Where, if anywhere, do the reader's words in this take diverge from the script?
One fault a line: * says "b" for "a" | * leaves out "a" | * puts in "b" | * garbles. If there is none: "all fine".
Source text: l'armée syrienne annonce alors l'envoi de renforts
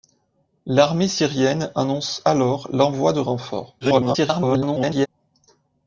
* garbles